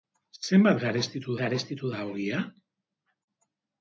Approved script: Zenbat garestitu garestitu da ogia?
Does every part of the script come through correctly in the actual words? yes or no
yes